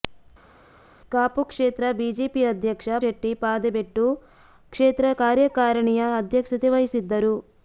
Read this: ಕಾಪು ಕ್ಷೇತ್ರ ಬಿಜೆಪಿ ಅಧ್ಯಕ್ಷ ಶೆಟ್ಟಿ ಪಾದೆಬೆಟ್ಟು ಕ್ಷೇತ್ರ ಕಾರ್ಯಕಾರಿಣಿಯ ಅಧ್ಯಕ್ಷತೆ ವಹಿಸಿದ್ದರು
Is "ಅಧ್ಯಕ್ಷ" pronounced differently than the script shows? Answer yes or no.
no